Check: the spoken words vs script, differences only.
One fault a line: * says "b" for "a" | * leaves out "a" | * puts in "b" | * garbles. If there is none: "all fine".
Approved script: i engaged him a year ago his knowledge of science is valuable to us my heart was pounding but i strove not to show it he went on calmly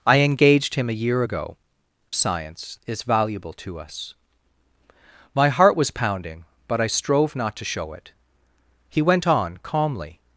* leaves out "his knowledge of"